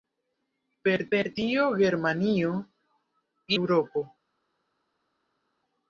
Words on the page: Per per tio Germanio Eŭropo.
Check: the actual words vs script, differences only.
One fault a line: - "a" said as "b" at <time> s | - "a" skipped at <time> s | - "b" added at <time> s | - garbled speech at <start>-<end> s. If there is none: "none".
none